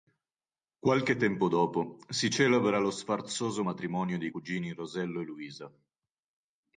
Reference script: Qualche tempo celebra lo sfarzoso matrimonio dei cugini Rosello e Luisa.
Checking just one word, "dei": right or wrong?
right